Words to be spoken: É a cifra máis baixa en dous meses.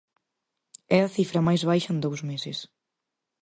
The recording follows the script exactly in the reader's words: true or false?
true